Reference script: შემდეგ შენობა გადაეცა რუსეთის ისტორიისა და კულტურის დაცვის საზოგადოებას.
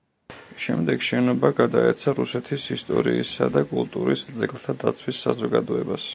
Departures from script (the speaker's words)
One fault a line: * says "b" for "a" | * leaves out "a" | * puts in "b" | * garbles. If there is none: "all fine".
* puts in "ძეგლთა"